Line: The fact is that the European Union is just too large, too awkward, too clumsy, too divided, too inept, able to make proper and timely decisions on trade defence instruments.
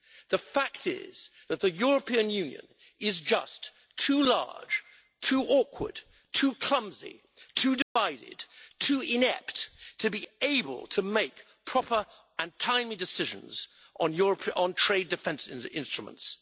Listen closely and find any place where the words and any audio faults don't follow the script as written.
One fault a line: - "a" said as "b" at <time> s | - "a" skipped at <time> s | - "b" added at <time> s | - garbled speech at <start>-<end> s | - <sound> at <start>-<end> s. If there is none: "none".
- dropout at 7.8-8.0 s
- "to be" added at 10.0 s